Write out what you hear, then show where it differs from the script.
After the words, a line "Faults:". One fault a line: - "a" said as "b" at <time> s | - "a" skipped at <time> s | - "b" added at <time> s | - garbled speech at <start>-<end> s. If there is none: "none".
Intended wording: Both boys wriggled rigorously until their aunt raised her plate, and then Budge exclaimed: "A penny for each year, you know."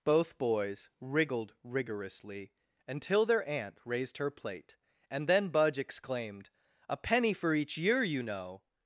Both boys wriggled rigorously until their aunt raised her plate, and then Budge exclaimed: "A penny for each year, you know."
Faults:
none